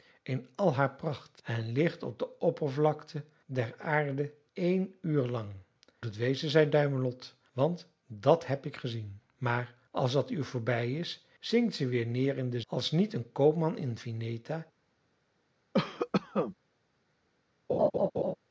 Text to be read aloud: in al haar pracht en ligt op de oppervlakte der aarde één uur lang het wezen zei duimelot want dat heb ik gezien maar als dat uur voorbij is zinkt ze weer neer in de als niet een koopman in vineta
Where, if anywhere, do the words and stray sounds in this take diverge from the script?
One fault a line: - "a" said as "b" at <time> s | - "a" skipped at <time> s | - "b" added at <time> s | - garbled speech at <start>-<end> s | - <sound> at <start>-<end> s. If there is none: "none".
- cough at 15.7-16.6 s
- laugh at 17.7-18.4 s